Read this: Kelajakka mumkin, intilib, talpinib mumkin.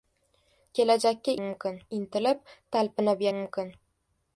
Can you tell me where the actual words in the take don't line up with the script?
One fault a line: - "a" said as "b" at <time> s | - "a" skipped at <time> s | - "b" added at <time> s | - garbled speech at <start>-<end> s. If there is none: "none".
none